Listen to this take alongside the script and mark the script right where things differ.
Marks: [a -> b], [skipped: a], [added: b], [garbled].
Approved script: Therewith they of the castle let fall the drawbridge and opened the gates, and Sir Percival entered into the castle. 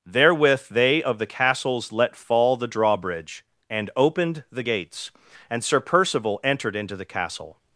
Therewith they of the [castle -> castles] let fall the drawbridge and opened the gates, and Sir Percival entered into the castle.